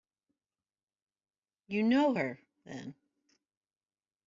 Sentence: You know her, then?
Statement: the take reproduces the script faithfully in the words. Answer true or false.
true